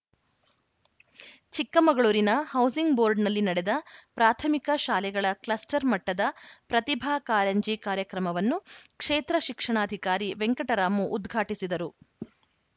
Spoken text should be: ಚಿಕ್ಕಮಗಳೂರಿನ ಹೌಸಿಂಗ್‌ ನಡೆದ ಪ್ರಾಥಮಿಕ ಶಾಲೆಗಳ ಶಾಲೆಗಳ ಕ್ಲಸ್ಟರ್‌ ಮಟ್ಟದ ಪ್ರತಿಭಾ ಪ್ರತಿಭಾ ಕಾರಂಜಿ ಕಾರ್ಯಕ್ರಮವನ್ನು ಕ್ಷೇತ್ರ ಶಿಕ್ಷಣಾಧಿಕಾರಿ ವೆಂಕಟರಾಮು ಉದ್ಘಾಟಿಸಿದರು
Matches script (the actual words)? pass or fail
fail